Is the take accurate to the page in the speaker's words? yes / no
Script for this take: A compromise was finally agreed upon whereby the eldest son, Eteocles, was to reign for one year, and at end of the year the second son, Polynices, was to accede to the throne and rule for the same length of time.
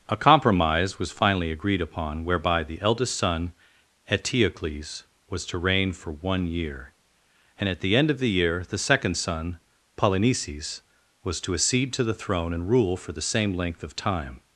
no